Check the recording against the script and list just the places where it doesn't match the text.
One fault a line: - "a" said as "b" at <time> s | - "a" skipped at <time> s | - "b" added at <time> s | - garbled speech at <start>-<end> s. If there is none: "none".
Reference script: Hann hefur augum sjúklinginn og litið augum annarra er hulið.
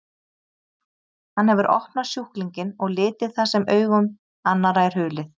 - "augum" said as "opnað" at 1.7 s
- "það sem" added at 3.4 s